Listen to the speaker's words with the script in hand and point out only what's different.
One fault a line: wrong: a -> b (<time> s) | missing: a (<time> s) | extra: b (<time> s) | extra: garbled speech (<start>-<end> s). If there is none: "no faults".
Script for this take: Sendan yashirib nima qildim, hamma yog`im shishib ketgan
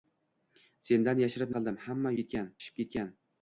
missing: nima (1.5 s)
wrong: yog`im -> ketgan (2.2 s)